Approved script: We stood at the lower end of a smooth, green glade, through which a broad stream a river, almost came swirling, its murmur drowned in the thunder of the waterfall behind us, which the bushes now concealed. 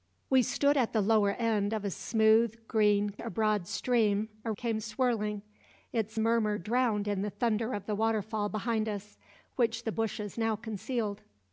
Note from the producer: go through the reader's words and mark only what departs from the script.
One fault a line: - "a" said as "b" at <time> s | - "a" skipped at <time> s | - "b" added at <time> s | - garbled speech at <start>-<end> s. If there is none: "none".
- "glade through which" skipped at 3.1 s
- "river almost" skipped at 4.5 s